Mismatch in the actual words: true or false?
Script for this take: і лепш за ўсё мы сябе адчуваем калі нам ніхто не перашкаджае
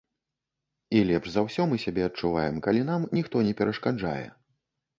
false